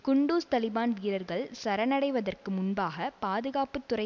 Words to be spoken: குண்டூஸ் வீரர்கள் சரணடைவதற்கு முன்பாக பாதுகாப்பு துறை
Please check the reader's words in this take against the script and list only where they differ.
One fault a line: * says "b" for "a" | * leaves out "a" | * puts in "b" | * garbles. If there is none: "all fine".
* puts in "தலிபான்"